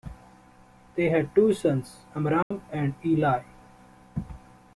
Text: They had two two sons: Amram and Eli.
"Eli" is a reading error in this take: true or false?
false